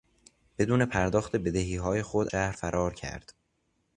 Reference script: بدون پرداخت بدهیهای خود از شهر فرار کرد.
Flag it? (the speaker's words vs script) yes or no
yes